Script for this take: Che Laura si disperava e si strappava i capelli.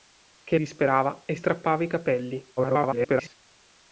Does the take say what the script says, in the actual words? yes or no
no